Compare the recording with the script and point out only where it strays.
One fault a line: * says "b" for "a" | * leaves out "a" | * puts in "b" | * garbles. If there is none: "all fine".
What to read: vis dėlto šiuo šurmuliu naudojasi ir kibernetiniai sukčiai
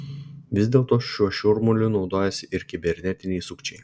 all fine